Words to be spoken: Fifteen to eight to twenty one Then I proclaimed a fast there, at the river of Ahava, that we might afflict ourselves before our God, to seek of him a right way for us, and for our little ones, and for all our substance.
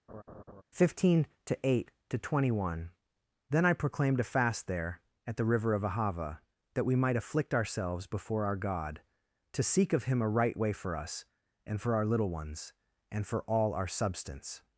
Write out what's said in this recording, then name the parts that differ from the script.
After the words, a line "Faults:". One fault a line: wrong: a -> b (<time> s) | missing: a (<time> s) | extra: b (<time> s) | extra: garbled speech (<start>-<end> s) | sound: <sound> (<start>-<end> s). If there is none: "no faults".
Fifteen to eight to twenty one Then I proclaimed a fast there, at the river of Ahava, that we might afflict ourselves before our God, to seek of him a right way for us, and for our little ones, and for all our substance.
Faults:
sound: laugh (0.1-0.6 s)